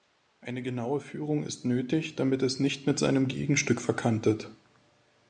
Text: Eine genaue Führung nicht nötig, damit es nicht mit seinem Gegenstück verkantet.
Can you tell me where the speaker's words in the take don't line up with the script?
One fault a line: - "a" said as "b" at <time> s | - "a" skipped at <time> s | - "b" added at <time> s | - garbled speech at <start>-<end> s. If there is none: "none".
- "nicht" said as "ist" at 1.4 s